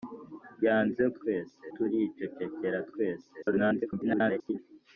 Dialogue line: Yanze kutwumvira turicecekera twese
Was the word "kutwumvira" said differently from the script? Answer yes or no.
yes